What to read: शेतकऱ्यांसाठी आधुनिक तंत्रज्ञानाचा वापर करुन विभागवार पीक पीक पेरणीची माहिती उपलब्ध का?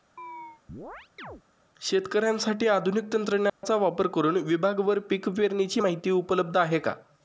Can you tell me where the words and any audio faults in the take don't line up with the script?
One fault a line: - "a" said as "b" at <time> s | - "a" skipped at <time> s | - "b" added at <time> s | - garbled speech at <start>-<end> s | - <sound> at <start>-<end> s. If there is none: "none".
- chirp at 0.2-1.4 s
- dropout at 3.5-3.6 s
- "पीक" skipped at 5.3 s
- "आहे" added at 6.6 s